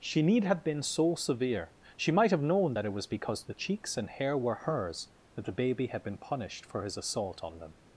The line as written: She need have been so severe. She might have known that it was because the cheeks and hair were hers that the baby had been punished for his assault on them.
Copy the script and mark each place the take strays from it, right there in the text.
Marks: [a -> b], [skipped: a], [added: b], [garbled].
She need have been so severe. She might have known that it was because the cheeks and hair were hers that the baby had been punished for his assault on them.